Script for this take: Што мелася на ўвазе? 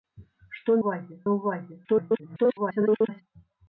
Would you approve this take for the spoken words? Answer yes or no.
no